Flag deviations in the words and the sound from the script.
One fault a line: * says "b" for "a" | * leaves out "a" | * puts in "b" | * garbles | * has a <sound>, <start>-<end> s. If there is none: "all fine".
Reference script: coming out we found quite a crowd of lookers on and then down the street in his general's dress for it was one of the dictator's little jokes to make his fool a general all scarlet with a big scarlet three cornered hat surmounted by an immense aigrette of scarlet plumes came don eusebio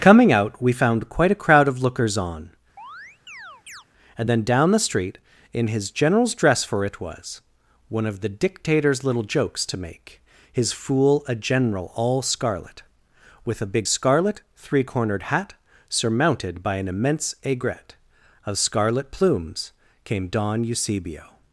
* has a chirp, 2.8-3.8 s